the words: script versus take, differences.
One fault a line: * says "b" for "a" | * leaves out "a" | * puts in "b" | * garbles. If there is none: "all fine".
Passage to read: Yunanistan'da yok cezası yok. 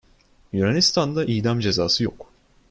* says "idam" for "yok"